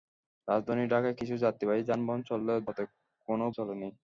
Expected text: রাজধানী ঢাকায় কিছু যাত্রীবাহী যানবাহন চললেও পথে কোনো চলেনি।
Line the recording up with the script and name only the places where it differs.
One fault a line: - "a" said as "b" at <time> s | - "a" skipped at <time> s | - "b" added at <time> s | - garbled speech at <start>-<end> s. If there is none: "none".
none